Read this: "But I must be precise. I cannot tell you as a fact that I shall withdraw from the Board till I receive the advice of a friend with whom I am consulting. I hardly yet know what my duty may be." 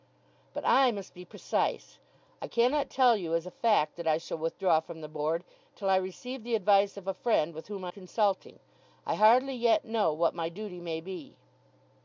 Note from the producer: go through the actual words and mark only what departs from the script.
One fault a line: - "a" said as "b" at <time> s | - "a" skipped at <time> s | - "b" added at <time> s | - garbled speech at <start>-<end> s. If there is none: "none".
- "am" skipped at 7.9 s